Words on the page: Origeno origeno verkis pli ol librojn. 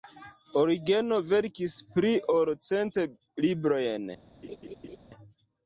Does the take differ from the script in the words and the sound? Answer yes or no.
yes